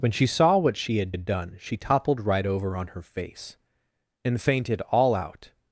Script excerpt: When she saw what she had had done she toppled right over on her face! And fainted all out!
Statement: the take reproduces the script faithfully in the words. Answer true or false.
true